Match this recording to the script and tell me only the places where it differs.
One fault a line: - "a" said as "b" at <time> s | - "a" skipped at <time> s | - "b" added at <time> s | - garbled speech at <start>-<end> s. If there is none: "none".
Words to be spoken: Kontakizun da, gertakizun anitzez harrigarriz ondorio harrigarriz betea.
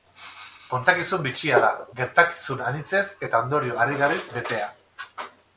- "bitxia" added at 1.3 s
- "harrigarriz" said as "eta" at 3.3 s